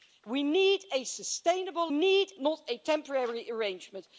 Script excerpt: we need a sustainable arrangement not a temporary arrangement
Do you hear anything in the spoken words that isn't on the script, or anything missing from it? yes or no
yes